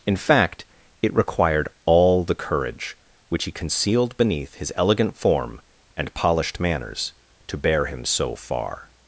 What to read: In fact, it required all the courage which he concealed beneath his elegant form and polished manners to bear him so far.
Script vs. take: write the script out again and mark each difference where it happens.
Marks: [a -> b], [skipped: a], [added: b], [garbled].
In fact, it required all the courage which he concealed beneath his elegant form and polished manners to bear him so far.